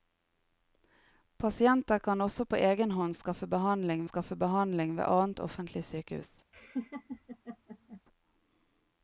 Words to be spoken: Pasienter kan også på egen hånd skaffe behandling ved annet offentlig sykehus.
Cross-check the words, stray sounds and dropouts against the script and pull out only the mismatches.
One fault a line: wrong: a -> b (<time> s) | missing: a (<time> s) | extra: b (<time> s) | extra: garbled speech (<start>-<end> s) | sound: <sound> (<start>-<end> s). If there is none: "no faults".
extra: skaffe behandling (4.1 s)
sound: laugh (6.5-8.0 s)